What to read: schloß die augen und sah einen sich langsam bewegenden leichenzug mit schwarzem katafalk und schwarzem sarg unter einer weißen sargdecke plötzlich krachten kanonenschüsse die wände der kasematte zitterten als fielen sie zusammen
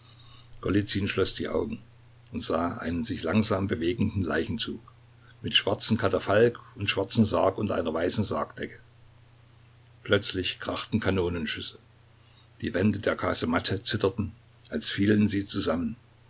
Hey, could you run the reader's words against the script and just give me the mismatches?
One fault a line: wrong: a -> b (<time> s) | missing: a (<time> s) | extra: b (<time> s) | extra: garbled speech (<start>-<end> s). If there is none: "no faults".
no faults